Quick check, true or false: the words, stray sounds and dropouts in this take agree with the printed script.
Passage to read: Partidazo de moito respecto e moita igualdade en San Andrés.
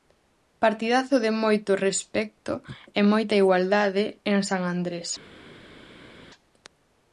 true